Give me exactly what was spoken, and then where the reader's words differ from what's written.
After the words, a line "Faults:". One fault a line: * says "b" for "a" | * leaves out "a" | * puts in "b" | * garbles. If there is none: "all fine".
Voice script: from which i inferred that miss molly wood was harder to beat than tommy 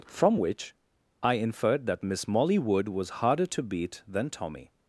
from which i inferred that miss molly wood was harder to beat than tommy
Faults:
all fine